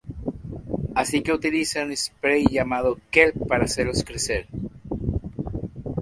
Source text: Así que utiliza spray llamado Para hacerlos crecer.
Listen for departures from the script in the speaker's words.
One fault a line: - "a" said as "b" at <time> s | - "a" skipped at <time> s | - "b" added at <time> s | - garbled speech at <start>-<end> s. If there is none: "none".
- "un" added at 1.8 s
- "Kelp" added at 3.1 s